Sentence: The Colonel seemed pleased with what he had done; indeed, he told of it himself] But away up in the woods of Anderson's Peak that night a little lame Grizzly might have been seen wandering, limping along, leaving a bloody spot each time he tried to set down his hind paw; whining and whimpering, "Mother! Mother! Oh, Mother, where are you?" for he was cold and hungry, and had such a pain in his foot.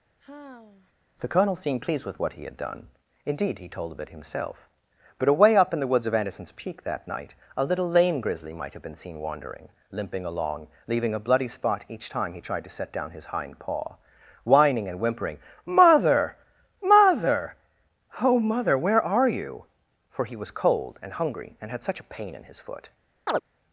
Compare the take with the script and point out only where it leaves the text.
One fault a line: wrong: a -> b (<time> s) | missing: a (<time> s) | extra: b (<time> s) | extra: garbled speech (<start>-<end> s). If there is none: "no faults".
no faults